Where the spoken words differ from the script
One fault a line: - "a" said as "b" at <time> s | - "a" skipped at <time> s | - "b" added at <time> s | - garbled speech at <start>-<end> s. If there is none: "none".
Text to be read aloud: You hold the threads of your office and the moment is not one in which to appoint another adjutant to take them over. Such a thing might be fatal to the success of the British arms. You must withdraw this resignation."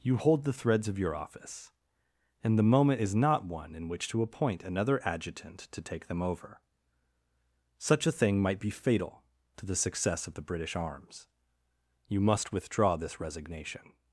none